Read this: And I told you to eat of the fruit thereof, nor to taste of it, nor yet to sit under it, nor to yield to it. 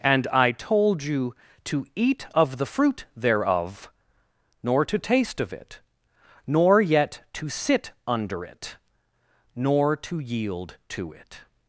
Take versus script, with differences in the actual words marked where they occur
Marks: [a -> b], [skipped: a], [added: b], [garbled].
And I told you to eat of the fruit thereof, nor to taste of it, nor yet to sit under it, nor to yield to it.